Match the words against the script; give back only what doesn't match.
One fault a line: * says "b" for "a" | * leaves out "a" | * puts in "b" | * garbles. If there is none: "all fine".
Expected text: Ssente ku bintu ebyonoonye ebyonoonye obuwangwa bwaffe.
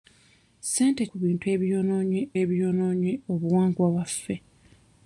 all fine